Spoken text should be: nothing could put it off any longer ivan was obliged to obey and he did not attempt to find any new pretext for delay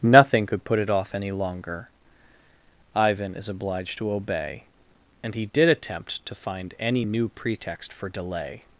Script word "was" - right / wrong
wrong